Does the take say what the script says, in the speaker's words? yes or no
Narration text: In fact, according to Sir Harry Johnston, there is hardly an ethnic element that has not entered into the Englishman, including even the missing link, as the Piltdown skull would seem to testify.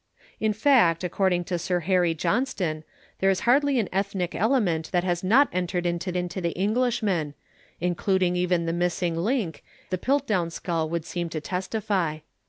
no